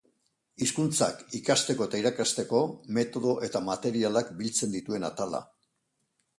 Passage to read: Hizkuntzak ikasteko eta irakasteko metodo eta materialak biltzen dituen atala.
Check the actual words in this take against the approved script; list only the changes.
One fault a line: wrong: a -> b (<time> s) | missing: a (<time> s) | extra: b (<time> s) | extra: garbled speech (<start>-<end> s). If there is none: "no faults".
no faults